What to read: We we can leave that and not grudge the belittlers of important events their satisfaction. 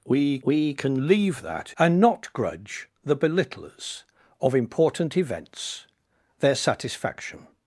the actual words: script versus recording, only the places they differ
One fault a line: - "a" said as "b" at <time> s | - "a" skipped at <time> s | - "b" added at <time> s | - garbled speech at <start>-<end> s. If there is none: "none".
none